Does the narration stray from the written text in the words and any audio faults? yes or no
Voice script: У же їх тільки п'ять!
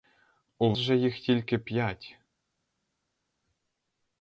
no